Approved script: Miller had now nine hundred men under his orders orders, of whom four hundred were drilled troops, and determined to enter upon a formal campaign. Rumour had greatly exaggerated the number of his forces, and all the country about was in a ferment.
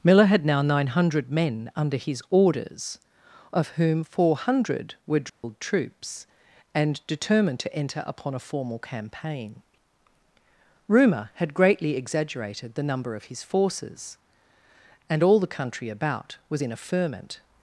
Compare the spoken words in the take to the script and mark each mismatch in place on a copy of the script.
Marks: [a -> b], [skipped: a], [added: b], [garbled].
Miller had now nine hundred men under his orders [skipped: orders,] of whom four hundred were drilled troops, and determined to enter upon a formal campaign. Rumour had greatly exaggerated the number of his forces, and all the country about was in a ferment.